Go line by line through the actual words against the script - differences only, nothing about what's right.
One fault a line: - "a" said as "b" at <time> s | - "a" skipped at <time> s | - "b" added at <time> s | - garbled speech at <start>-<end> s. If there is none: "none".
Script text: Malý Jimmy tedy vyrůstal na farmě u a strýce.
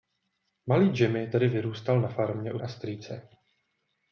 none